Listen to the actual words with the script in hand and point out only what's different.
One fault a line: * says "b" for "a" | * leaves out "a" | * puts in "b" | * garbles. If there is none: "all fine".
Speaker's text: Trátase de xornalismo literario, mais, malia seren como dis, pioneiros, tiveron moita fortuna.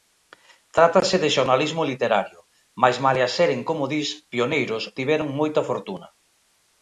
all fine